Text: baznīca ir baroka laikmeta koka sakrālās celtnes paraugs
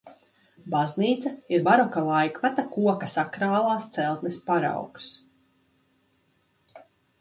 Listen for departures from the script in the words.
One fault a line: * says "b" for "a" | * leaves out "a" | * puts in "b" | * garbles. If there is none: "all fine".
all fine